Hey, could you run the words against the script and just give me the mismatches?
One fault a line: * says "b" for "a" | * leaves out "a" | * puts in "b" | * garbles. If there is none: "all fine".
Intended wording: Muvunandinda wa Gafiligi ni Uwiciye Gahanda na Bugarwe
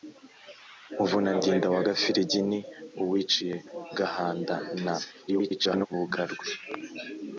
* garbles